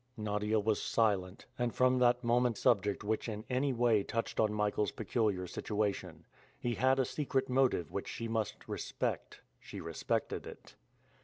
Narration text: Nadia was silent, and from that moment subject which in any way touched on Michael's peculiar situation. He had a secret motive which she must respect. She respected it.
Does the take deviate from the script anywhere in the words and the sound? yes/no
no